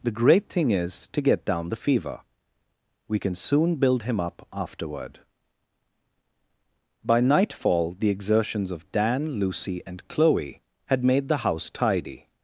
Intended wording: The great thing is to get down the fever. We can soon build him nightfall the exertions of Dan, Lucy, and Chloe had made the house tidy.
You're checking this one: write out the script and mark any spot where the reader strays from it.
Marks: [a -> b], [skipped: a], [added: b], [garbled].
The great thing is to get down the fever. We can soon build him [added: up afterward By] nightfall the exertions of Dan, Lucy, and Chloe had made the house tidy.